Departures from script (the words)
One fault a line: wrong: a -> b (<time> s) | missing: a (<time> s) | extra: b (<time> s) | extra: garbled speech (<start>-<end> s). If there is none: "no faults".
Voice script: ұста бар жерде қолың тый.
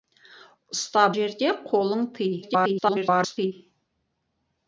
missing: бар (1.0 s)
extra: garbled speech (2.4-3.5 s)